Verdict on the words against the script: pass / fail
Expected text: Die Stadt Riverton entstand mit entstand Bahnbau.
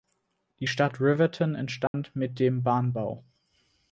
fail